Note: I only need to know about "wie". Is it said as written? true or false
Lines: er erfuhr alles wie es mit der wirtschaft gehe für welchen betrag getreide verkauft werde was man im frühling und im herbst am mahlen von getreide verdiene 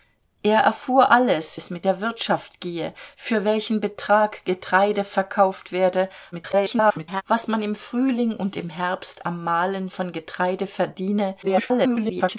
false